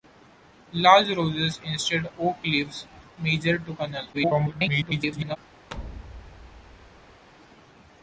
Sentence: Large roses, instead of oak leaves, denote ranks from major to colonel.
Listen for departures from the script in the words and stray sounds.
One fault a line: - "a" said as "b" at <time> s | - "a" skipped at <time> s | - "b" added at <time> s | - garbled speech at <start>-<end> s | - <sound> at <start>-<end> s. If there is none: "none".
- "of" skipped at 2.1 s
- "denote ranks from" skipped at 2.9 s
- garbled speech at 4.1-5.4 s
- thud at 5.7-7.3 s